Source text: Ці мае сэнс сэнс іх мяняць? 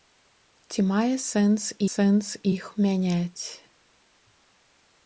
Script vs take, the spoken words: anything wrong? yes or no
no